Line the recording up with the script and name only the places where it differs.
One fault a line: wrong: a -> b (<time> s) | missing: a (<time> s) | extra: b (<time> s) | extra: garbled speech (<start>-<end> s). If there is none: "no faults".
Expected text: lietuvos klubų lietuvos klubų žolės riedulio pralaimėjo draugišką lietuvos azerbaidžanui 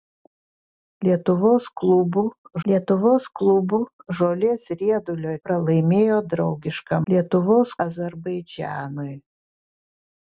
no faults